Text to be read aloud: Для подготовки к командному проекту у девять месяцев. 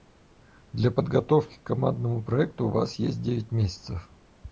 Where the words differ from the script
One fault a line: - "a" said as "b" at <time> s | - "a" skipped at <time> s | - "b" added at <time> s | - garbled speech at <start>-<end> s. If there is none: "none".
- "вас есть" added at 2.7 s